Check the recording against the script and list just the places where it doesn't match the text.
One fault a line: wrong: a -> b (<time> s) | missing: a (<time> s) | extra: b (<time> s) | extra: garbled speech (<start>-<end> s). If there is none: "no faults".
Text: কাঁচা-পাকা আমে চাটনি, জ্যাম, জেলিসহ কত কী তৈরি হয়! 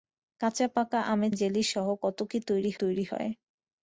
missing: চাটনি জ্যাম (1.3 s)
extra: তৈরি (2.8 s)